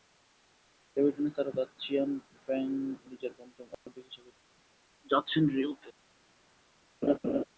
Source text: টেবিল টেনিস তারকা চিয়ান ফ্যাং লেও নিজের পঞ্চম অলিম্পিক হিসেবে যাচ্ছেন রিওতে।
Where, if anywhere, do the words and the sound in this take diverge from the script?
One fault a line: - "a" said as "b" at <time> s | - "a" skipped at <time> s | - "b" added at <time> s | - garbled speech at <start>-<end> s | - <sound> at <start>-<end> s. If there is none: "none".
- "লেও" skipped at 2.7 s
- dropout at 3.7-3.9 s
- laugh at 7.0-7.4 s